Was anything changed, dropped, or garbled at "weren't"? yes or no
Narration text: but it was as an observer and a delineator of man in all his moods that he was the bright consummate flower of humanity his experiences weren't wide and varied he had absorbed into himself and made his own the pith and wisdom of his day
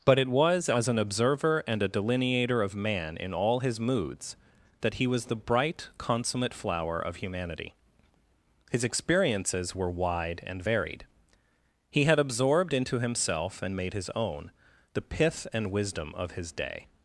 yes